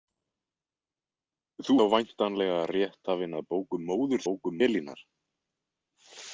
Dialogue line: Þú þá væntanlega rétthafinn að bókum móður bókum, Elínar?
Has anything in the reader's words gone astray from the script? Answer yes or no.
no